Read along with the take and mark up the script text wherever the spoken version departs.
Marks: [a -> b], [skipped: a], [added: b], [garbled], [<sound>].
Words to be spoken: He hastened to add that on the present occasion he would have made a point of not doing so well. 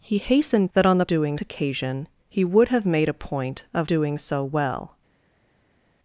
He hastened [skipped: to add] that on the [present -> doing] occasion he would have made a point of [skipped: not] doing so well.